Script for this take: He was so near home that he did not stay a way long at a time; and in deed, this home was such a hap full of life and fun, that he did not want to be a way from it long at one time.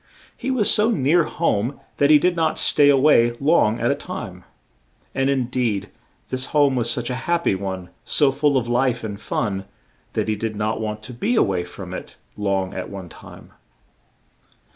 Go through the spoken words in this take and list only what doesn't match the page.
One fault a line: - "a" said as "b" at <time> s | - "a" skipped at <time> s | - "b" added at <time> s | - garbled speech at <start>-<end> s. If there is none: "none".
- "py one so" added at 7.4 s